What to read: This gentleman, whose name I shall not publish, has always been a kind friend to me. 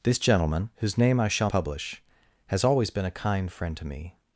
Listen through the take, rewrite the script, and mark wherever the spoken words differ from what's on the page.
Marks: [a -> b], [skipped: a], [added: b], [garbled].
This gentleman, whose name I shall [skipped: not] publish, has always been a kind friend to me.